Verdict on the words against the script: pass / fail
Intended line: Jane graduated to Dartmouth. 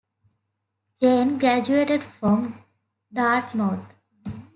fail